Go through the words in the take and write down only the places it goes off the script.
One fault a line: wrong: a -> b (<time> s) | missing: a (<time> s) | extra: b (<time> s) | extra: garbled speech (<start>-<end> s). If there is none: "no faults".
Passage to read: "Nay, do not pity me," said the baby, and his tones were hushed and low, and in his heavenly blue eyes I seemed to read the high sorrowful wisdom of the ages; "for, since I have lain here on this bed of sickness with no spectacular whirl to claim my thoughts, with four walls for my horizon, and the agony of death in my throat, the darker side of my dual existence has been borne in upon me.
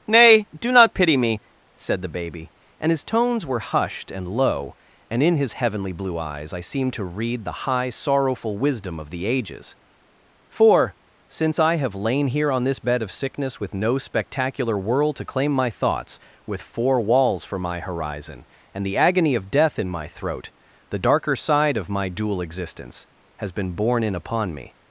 wrong: whirl -> world (14.8 s)